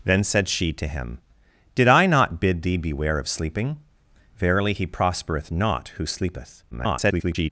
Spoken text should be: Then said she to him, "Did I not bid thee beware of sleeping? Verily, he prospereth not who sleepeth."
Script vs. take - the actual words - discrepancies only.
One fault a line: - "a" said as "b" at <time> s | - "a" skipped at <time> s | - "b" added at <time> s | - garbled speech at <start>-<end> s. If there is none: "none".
- garbled speech at 6.7-7.5 s